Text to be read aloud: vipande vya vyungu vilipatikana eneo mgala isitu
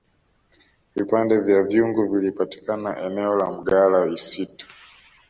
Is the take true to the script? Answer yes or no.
no